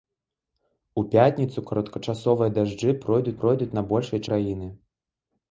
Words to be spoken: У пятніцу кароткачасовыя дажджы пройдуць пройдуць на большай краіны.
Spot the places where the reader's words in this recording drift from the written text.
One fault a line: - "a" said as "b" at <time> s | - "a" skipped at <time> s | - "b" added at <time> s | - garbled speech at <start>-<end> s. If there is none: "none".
none